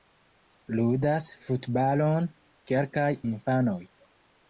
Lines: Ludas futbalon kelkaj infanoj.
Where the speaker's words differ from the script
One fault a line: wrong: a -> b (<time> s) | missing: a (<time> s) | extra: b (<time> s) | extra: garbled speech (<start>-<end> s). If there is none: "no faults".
no faults